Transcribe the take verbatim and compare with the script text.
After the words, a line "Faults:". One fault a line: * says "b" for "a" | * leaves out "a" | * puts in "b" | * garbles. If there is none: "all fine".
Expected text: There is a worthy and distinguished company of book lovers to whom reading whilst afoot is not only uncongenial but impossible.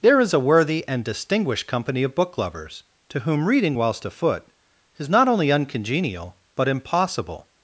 There is a worthy and distinguished company of book lovers to whom reading whilst afoot is not only uncongenial but impossible.
Faults:
all fine